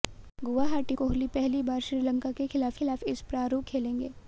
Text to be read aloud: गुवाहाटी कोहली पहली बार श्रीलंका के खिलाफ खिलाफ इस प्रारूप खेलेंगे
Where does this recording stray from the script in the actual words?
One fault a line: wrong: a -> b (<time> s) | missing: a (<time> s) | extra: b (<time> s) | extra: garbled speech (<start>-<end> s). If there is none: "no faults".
no faults